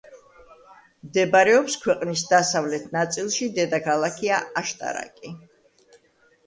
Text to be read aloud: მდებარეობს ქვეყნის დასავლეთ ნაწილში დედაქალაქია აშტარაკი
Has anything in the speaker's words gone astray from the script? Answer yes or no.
no